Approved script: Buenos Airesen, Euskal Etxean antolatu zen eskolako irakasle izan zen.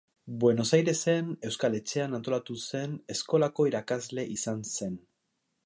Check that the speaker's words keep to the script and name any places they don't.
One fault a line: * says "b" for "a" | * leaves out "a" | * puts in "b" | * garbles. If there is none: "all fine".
all fine